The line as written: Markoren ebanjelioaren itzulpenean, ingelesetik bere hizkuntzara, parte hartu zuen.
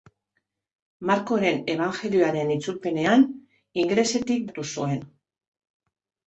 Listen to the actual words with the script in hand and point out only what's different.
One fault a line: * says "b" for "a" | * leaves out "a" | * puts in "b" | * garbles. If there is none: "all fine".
* leaves out "bere hizkuntzara parte"